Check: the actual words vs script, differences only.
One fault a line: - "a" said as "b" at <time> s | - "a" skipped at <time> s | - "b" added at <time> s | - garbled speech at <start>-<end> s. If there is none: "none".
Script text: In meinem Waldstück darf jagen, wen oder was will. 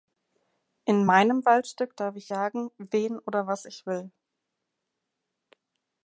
- "ich" added at 2.1 s
- "ich" added at 3.6 s